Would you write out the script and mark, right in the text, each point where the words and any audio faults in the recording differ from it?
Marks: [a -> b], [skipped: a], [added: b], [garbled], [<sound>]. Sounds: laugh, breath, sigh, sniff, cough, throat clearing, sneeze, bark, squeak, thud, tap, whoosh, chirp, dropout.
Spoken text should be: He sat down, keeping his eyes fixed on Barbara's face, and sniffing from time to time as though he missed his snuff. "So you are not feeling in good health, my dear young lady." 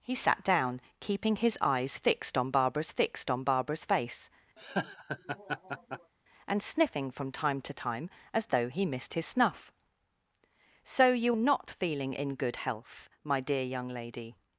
He sat down, keeping his eyes fixed on Barbara's [added: fixed on Barbara's] face, [laugh] and sniffing from time to time as though he missed his snuff. "So you [skipped: are] not feeling in good health, my dear young lady."